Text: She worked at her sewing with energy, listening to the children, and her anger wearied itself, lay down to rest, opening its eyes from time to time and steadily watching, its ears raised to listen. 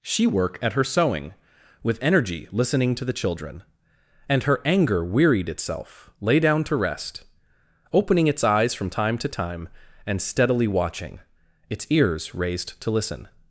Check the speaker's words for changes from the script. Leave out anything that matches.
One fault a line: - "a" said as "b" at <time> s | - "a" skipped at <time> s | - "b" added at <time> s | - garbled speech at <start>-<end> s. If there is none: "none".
- "worked" said as "work" at 0.3 s